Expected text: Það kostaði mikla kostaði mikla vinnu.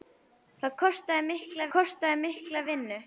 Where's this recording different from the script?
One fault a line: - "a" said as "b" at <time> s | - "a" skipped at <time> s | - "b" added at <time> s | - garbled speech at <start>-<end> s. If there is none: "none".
none